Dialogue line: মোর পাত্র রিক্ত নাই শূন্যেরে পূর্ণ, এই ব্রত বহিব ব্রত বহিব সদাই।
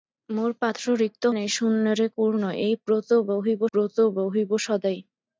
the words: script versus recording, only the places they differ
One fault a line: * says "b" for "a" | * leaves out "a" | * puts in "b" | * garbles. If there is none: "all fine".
all fine